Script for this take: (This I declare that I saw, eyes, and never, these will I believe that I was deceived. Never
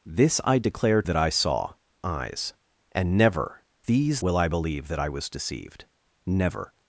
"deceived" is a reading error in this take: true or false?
false